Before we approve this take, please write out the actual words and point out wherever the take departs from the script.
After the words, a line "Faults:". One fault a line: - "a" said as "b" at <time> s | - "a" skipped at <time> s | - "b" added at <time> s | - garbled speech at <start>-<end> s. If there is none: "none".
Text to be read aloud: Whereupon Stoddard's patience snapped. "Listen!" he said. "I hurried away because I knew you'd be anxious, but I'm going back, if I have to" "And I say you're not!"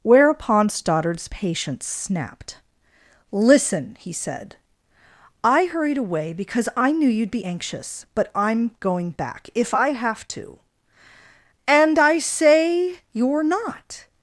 Whereupon Stoddard's patience snapped. "Listen!" he said. "I hurried away because I knew you'd be anxious, but I'm going back, if I have to" "And I say you're not!"
Faults:
none